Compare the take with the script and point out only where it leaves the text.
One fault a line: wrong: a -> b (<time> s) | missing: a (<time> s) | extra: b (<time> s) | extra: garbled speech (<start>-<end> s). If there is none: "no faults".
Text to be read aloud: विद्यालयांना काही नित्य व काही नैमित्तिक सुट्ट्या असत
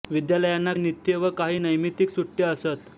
missing: काही (0.7 s)